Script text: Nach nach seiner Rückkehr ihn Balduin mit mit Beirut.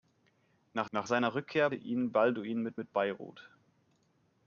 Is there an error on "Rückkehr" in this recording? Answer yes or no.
no